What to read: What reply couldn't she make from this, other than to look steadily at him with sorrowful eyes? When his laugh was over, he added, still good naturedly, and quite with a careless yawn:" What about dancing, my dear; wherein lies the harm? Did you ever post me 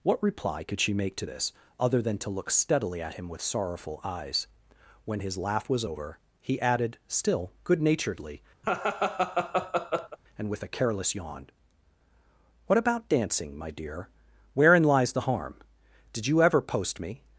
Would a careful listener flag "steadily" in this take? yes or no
no